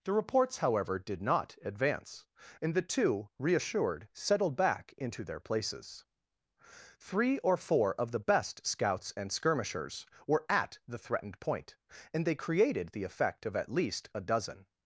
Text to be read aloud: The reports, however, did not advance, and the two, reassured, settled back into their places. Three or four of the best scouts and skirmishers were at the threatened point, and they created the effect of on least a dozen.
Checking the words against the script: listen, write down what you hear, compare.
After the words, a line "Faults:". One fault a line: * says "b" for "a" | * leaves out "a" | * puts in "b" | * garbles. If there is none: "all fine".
The reports, however, did not advance, and the two, reassured, settled back into their places. Three or four of the best scouts and skirmishers were at the threatened point, and they created the effect of at least a dozen.
Faults:
* says "at" for "on"